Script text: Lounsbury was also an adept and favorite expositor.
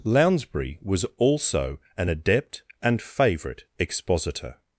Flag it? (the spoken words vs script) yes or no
no